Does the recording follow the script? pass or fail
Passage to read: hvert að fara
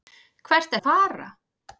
pass